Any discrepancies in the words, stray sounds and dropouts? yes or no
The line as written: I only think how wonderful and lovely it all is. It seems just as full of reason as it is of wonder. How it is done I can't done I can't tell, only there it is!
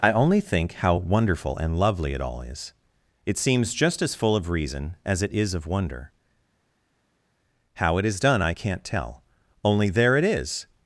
yes